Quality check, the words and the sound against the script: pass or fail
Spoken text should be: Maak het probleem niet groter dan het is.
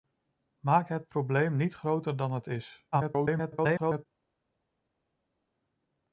fail